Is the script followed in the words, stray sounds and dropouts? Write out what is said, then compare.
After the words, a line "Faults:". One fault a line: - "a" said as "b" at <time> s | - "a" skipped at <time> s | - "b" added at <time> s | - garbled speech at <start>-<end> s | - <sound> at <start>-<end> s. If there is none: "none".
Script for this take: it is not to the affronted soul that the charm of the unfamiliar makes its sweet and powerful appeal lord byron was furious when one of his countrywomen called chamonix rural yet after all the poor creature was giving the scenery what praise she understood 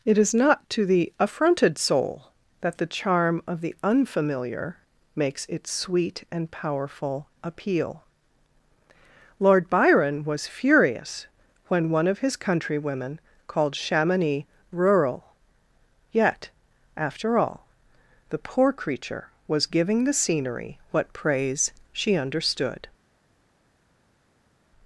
it is not to the affronted soul that the charm of the unfamiliar makes its sweet and powerful appeal lord byron was furious when one of his countrywomen called chamonix rural yet after all the poor creature was giving the scenery what praise she understood
Faults:
none